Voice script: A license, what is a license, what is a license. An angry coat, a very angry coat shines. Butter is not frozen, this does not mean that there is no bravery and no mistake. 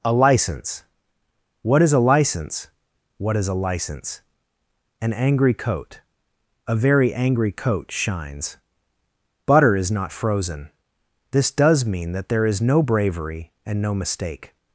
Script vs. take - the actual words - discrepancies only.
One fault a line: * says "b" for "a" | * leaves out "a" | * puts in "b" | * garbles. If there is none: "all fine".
* leaves out "not"